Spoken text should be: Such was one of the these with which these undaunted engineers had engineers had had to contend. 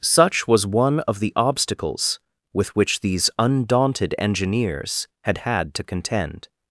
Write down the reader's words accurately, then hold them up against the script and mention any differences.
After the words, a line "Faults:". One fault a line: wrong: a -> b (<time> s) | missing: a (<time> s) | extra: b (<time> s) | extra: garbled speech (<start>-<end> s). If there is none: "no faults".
Such was one of the obstacles with which these undaunted engineers had had to contend.
Faults:
wrong: these -> obstacles (1.4 s)
missing: engineers had (5.4 s)